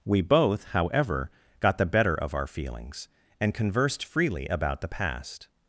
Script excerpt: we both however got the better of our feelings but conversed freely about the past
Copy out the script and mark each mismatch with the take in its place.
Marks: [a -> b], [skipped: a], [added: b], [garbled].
we both however got the better of our feelings [but -> and] conversed freely about the past